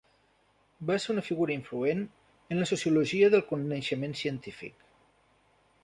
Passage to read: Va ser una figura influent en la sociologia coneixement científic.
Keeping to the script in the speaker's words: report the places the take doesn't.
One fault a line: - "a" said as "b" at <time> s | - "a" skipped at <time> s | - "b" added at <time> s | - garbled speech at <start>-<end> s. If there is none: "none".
- "del" added at 3.4 s